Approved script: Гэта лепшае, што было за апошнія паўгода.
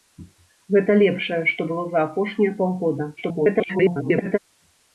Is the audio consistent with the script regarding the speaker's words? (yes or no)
no